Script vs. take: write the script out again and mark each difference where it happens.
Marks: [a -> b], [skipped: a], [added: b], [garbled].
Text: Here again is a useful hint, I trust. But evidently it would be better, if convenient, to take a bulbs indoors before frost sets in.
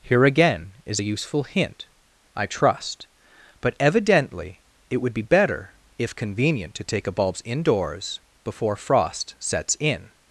Here again is a useful hint, I trust. But evidently it would be better, if convenient, to take a bulbs indoors before frost sets in.